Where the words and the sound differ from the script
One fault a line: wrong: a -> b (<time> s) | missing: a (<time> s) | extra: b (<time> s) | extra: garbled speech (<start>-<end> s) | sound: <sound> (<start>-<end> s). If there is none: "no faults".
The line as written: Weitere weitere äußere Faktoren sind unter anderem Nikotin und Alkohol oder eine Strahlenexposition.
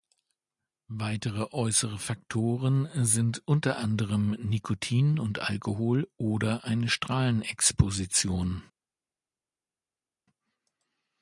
missing: weitere (1.5 s)